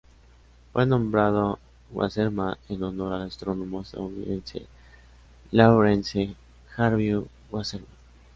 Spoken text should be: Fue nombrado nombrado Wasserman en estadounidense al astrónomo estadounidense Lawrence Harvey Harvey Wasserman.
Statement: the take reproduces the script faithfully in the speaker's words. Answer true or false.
false